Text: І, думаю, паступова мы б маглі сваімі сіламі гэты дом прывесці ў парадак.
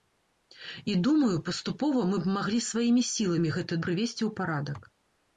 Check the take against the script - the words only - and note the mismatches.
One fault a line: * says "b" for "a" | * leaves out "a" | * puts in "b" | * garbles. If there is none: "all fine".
* leaves out "дом"